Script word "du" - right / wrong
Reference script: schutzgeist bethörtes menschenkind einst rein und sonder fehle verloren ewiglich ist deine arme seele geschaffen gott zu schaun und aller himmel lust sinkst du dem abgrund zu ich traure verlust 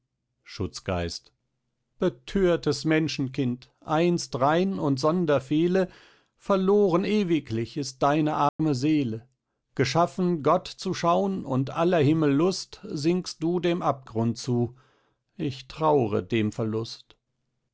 right